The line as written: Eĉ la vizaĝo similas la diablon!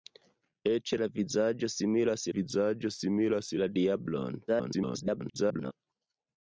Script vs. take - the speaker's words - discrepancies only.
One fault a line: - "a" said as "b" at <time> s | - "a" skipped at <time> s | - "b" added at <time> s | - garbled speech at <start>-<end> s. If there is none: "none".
- "vizaĝo similas" added at 2.4 s
- garbled speech at 4.5-5.7 s